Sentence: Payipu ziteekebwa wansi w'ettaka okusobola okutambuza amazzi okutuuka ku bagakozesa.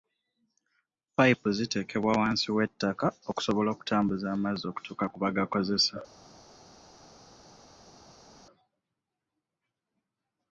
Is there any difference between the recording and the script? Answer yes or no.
no